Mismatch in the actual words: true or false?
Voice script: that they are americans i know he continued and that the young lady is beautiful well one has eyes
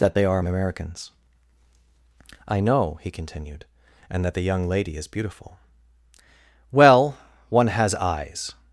false